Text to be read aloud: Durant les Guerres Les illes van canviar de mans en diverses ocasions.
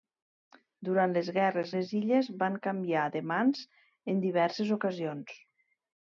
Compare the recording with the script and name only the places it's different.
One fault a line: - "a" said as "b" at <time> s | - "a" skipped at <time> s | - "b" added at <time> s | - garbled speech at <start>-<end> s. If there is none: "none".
none